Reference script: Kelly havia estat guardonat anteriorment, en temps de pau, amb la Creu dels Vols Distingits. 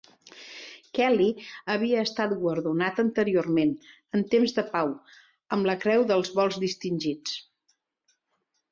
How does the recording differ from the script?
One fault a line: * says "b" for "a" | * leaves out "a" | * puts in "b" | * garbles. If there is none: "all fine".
all fine